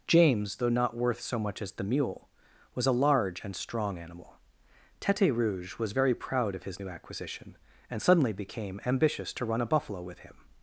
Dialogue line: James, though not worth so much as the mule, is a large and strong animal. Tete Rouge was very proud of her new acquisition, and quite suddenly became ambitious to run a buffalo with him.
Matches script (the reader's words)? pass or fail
fail